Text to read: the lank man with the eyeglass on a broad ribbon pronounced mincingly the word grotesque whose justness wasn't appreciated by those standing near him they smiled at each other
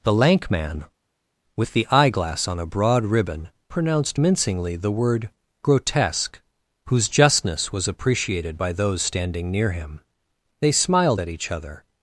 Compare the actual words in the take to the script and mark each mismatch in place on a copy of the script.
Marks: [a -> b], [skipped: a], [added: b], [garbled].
the lank man with the eyeglass on a broad ribbon pronounced mincingly the word grotesque whose justness [wasn't -> was] appreciated by those standing near him they smiled at each other